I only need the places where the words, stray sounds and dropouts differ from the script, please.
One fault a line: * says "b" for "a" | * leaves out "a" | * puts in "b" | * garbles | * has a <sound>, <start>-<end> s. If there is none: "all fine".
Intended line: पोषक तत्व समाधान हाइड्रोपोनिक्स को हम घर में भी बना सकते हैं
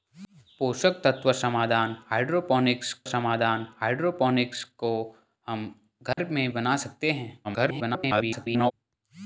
* puts in "समाधान हाइड्रोपोनिक्स"
* has a dropout, 6.1-6.2 s
* leaves out "भी"
* garbles